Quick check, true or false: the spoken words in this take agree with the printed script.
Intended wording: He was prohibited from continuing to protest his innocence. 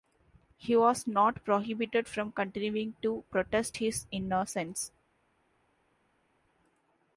false